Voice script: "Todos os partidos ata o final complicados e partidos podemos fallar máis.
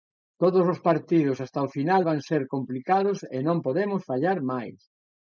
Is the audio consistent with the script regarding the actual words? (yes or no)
no